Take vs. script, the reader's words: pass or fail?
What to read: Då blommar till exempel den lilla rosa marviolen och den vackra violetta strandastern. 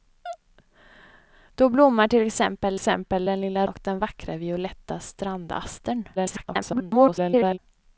fail